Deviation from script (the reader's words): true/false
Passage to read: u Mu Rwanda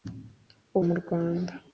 false